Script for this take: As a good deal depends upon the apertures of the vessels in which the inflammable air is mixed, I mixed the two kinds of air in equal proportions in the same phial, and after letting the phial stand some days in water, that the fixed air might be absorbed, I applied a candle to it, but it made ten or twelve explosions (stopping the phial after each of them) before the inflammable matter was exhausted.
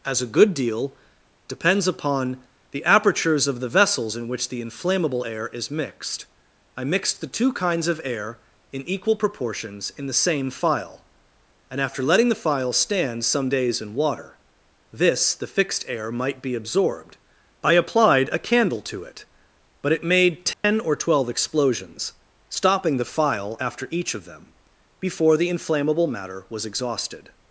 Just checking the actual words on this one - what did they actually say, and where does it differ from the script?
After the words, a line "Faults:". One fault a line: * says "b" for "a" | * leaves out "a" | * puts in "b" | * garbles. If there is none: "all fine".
As a good deal depends upon the apertures of the vessels in which the inflammable air is mixed, I mixed the two kinds of air in equal proportions in the same phial, and after letting the phial stand some days in water, this the fixed air might be absorbed, I applied a candle to it, but it made ten or twelve explosions (stopping the phial after each of them) before the inflammable matter was exhausted.
Faults:
* says "this" for "that"